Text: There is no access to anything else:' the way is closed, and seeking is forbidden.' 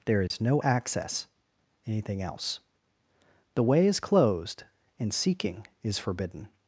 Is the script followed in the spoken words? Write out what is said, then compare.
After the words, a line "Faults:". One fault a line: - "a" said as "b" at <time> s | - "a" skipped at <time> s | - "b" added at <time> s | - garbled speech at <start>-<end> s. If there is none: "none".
There is no access anything else:' the way is closed, and seeking is forbidden.'
Faults:
- "to" skipped at 1.3 s